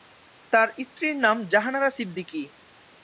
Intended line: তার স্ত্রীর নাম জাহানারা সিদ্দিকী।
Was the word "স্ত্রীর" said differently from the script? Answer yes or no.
no